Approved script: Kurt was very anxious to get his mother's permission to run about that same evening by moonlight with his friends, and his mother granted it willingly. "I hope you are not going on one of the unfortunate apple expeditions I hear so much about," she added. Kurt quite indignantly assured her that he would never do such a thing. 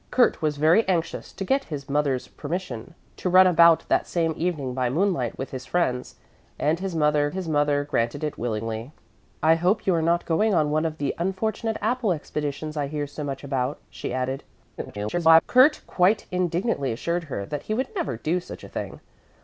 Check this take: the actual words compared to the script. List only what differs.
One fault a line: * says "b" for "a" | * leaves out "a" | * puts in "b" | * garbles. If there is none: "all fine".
* puts in "his mother"
* garbles